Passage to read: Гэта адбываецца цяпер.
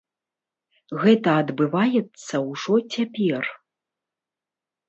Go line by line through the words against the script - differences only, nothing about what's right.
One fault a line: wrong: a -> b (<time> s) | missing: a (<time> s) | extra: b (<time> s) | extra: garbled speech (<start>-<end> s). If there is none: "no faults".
extra: ўжо (2.5 s)